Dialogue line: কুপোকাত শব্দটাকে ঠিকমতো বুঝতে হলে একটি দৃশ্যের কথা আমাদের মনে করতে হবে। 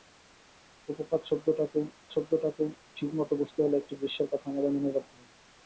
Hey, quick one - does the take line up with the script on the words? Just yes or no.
no